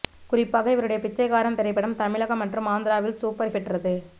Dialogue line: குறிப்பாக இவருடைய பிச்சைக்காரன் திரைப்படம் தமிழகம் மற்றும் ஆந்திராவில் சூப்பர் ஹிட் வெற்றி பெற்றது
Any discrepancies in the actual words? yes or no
yes